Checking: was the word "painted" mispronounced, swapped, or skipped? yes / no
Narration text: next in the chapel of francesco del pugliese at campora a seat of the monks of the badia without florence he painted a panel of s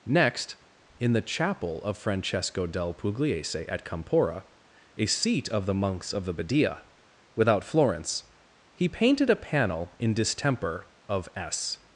no